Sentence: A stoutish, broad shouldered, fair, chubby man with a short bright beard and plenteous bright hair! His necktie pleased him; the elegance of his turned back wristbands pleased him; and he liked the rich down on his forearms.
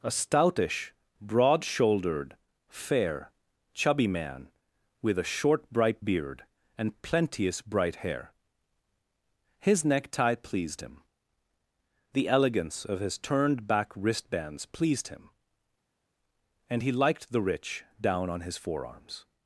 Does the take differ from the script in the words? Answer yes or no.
no